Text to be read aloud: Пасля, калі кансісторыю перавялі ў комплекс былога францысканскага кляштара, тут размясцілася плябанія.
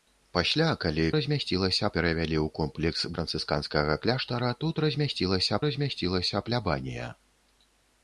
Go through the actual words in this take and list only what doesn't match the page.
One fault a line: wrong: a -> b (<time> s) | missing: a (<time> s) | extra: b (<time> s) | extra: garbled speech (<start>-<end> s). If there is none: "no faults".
wrong: кансісторыю -> размясцілася (1.2 s)
missing: былога (3.0 s)
extra: размясцілася (5.7 s)